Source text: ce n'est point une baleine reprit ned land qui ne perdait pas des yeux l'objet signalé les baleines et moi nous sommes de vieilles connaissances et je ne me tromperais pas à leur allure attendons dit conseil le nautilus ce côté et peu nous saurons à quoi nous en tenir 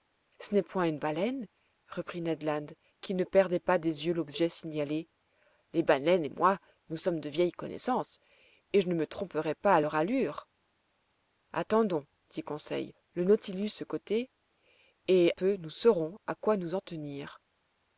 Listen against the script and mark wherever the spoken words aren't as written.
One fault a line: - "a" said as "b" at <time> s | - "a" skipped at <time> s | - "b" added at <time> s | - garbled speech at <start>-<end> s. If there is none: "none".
none